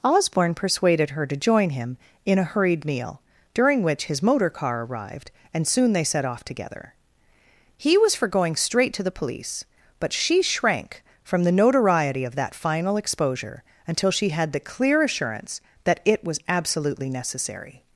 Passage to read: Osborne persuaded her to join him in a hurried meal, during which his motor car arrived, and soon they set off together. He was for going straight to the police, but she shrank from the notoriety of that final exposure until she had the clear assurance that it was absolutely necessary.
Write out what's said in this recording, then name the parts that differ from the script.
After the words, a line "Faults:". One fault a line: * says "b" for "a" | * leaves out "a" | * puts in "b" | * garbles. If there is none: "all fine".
Osborne persuaded her to join him in a hurried meal, during which his motor car arrived, and soon they set off together. He was for going straight to the police, but she shrank from the notoriety of that final exposure until she had the clear assurance that it was absolutely necessary.
Faults:
all fine